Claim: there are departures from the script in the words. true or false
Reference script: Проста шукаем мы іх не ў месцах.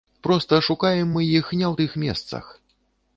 true